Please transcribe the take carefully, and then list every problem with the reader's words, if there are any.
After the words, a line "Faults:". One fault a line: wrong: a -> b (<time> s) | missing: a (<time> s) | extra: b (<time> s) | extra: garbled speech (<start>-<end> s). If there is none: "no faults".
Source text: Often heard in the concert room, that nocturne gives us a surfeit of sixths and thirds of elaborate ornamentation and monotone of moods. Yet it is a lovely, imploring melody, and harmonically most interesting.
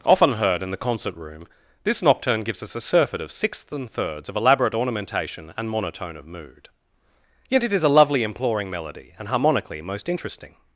Often heard in the concert room, this nocturne gives us a surfeit of sixths and thirds of elaborate ornamentation and monotone of mood. Yet it is a lovely, imploring melody, and harmonically most interesting.
Faults:
wrong: that -> this (1.8 s)
wrong: moods -> mood (6.2 s)